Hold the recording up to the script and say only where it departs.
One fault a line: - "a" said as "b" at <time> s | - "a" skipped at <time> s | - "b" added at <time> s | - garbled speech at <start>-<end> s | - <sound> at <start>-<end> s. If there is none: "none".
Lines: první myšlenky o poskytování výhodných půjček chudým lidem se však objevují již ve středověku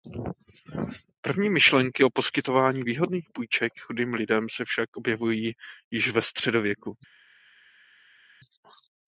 none